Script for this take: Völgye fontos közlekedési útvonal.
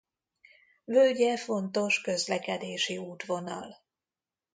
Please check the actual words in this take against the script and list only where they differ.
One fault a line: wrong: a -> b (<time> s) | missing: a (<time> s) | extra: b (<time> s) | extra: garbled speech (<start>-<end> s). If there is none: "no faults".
no faults